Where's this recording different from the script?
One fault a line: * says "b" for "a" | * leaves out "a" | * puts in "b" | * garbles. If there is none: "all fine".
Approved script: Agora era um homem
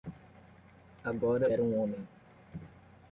all fine